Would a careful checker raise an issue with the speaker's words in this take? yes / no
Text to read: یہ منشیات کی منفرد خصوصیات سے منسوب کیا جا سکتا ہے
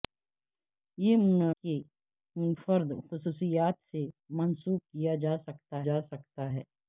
yes